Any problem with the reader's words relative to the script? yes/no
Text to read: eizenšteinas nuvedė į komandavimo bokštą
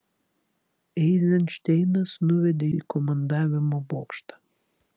no